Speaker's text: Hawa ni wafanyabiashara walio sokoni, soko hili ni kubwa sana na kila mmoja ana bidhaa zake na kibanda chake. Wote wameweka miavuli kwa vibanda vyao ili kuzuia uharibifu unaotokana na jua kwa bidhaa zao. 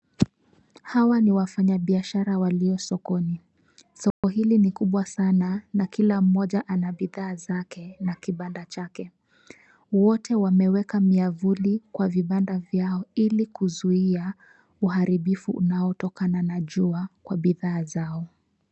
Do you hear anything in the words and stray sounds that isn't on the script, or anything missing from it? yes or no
yes